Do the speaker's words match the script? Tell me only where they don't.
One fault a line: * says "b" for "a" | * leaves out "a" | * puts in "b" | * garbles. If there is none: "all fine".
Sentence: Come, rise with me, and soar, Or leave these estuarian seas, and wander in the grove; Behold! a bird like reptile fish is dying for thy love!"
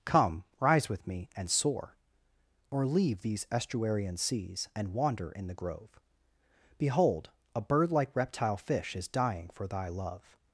all fine